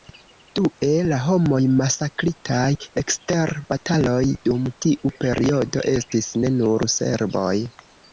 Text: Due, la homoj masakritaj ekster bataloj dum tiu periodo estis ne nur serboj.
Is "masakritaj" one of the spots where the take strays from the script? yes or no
no